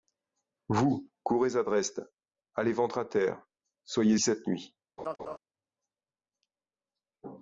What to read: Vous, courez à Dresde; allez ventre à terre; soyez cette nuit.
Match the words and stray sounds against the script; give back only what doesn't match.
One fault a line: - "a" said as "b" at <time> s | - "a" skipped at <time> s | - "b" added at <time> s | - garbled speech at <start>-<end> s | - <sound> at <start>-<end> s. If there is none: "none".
- laugh at 5.0-5.4 s